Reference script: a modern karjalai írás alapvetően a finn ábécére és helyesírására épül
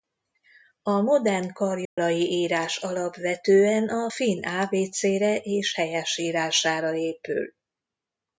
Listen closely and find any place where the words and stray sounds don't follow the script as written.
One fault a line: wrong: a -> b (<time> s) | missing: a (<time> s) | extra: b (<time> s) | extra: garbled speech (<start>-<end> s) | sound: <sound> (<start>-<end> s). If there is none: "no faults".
sound: dropout (1.9-2.0 s)